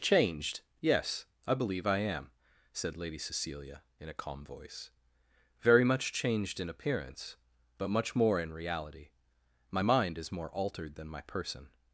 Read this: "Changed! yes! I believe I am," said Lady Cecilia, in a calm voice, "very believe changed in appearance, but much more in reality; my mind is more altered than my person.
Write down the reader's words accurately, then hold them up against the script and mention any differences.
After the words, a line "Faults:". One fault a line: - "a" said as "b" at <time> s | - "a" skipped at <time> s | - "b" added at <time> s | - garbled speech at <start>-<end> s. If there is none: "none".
"Changed! yes! I believe I am," said Lady Cecilia, in a calm voice, "very much changed in appearance, but much more in reality; my mind is more altered than my person.
Faults:
- "believe" said as "much" at 5.8 s